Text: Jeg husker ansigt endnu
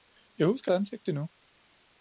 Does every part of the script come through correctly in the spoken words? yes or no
yes